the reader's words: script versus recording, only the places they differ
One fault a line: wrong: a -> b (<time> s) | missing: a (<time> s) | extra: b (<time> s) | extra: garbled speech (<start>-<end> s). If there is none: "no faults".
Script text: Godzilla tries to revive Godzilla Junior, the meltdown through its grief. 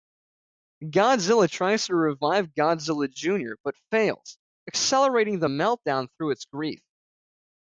extra: but fails accelerating (3.6 s)